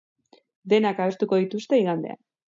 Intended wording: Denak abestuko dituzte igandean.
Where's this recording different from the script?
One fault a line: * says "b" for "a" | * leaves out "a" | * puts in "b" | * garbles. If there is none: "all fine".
all fine